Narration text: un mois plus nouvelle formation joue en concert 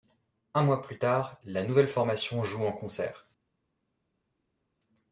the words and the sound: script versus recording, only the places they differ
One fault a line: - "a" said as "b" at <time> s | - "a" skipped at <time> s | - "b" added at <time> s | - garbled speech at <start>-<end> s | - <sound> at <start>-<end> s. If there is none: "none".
- "tard la" added at 1.0 s